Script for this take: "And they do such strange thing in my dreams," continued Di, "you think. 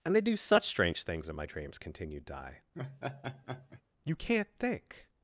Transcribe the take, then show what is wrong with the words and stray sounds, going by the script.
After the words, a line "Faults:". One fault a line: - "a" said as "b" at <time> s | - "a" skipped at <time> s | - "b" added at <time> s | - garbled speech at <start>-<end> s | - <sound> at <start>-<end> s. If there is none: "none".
"And they do such strange things in my dreams," continued Di, "you can't think.
Faults:
- "thing" said as "things" at 1.0 s
- laugh at 2.7-3.8 s
- "can't" added at 4.2 s